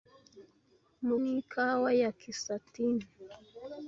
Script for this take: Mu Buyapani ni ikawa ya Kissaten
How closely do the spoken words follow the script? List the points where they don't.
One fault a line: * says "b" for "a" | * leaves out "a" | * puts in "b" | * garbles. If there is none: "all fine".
* leaves out "Buyapani"